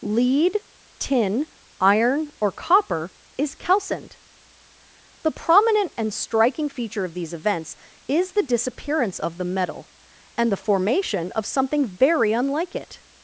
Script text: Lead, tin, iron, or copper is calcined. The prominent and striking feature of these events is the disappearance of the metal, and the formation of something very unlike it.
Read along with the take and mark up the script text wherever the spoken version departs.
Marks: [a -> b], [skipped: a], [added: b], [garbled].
Lead, tin, iron, or copper is calcined. The prominent and striking feature of these events is the disappearance of the metal, and the formation of something very unlike it.